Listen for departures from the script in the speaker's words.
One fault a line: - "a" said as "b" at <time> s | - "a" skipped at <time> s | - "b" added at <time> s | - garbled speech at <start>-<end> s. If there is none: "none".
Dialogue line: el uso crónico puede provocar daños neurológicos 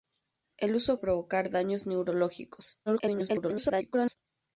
- "crónico puede" skipped at 1.0 s
- garbled speech at 2.9-4.2 s